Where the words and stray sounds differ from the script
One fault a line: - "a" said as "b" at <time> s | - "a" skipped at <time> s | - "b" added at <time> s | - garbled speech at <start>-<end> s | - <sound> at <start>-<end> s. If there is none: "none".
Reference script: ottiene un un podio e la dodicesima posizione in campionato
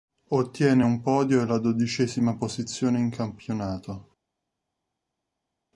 - "un" skipped at 1.0 s